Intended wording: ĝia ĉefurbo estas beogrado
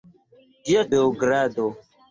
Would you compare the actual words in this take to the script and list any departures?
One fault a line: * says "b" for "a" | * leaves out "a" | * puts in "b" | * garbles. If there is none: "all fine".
* leaves out "ĉefurbo estas"